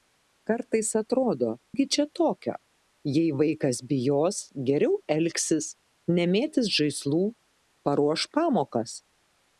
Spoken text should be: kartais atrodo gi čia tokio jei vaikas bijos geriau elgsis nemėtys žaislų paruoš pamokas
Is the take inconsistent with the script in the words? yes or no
no